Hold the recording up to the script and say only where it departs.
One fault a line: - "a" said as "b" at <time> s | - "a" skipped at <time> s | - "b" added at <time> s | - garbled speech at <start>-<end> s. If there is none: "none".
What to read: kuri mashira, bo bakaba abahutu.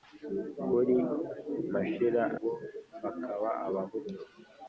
none